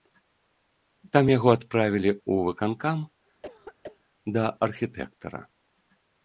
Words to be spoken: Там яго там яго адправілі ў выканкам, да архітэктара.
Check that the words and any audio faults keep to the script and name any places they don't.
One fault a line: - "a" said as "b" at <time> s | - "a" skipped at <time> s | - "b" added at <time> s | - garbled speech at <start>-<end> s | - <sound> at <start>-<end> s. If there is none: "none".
- "там яго" skipped at 1.5 s
- throat clearing at 3.4-4.0 s